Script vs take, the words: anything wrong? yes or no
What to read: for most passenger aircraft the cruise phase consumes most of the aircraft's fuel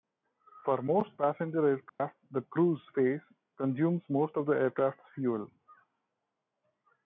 no